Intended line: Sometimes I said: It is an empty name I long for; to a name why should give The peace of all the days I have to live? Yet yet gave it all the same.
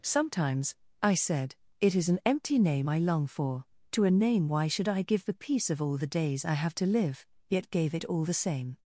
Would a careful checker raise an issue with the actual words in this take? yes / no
yes